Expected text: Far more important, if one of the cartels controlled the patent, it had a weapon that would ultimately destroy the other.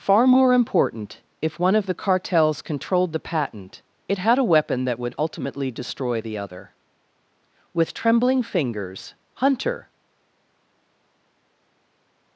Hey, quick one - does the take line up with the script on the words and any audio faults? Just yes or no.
no